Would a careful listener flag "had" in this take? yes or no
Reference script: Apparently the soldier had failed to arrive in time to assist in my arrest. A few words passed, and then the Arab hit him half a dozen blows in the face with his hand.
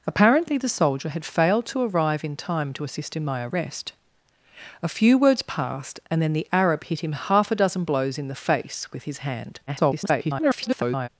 no